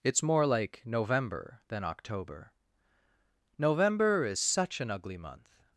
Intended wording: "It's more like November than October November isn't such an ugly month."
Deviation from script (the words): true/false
true